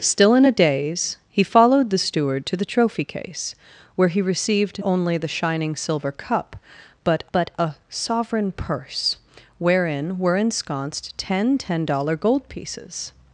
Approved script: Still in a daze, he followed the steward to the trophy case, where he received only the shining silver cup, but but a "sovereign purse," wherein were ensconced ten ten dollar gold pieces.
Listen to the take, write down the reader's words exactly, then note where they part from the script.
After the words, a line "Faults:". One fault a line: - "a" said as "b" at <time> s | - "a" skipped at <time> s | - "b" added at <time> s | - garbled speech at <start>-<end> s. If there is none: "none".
Still in a daze, he followed the steward to the trophy case, where he received only the shining silver cup, but but a "sovereign purse," wherein were ensconced ten ten dollar gold pieces.
Faults:
none